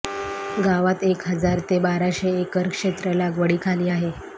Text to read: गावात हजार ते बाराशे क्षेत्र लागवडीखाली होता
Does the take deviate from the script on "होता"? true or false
true